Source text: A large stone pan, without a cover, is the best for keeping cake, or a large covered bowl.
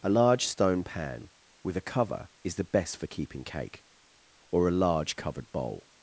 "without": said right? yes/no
no